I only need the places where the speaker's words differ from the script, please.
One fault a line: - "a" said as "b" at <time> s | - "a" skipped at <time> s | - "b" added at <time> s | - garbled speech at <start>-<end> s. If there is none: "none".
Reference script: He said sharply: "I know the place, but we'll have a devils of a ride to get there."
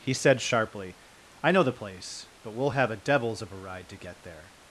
none